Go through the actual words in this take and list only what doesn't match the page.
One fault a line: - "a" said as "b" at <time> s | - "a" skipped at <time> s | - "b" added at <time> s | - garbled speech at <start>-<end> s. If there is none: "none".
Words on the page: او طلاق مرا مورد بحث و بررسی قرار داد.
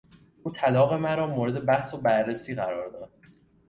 none